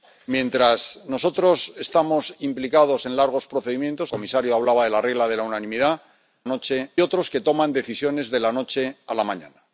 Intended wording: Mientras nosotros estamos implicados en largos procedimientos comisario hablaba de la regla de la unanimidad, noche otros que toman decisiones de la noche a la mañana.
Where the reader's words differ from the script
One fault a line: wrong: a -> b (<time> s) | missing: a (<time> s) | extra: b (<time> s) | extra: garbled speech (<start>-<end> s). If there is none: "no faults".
no faults